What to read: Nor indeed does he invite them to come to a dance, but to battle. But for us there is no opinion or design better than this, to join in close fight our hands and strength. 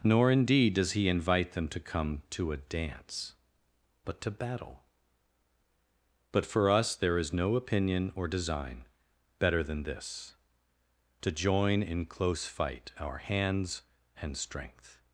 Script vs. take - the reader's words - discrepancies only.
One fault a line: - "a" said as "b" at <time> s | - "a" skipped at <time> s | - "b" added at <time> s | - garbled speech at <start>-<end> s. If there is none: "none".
none